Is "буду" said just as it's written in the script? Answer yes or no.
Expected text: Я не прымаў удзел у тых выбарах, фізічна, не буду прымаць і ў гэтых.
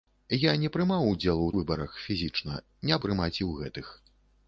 no